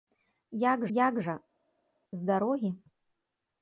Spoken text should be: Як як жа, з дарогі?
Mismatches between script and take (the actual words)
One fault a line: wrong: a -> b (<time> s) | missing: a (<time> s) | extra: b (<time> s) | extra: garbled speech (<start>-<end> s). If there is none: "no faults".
no faults